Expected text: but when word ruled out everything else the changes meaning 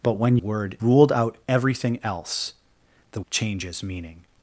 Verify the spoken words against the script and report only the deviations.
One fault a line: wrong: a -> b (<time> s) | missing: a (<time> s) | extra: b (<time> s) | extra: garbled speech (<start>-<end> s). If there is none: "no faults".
no faults